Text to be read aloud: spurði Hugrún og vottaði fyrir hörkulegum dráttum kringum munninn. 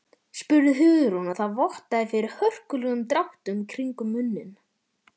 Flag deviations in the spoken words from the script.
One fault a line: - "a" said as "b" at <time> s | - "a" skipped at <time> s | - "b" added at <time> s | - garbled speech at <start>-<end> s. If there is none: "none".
- "það" added at 1.4 s